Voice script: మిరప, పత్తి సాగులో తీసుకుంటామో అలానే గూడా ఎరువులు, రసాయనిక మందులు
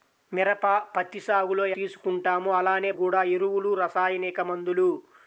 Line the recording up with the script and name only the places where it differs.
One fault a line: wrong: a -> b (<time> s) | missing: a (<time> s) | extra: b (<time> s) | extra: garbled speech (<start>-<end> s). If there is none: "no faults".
no faults